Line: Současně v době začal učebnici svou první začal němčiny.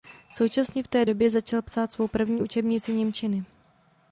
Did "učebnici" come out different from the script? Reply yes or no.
yes